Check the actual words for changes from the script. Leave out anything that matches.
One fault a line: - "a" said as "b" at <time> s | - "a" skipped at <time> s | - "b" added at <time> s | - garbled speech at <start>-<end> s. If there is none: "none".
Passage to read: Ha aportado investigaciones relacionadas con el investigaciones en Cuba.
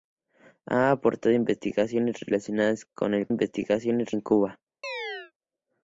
none